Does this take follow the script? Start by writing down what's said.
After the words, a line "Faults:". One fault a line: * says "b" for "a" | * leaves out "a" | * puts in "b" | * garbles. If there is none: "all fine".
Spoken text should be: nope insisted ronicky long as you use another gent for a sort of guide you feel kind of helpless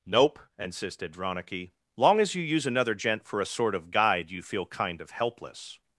nope insisted ronicky long as you use another gent for a sort of guide you feel kind of helpless
Faults:
all fine